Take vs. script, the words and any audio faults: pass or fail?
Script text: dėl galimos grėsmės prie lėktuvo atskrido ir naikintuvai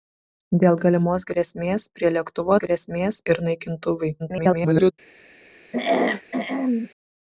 fail